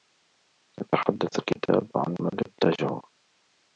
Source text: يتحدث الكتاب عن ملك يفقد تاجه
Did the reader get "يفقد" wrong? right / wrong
wrong